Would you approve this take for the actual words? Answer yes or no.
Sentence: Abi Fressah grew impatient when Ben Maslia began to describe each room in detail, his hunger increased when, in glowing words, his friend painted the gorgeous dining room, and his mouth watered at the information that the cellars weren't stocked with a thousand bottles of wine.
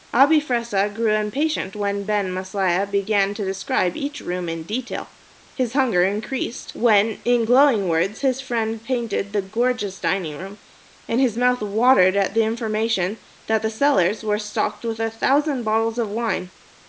no